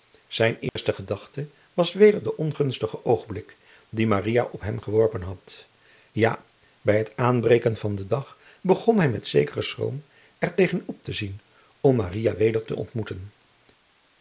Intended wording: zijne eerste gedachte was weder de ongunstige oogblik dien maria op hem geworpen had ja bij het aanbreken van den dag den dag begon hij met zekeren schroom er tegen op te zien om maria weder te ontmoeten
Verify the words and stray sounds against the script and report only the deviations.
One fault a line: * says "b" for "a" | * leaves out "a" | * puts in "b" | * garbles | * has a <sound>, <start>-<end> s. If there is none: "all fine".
* has a dropout, 0.7-0.8 s
* leaves out "den dag"